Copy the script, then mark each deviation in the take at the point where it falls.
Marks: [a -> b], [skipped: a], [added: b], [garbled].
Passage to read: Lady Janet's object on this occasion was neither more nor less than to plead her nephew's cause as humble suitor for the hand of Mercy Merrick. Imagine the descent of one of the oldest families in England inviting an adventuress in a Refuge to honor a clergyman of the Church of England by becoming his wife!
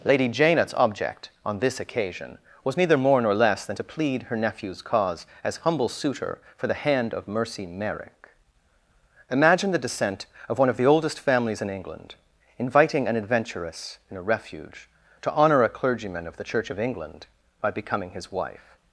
Lady Janet's object on this occasion was neither more nor less than to plead her nephew's cause as humble suitor for the hand of Mercy Merrick. Imagine the descent of one of the oldest families in England inviting an adventuress in a Refuge to honor a clergyman of the Church of England by becoming his wife!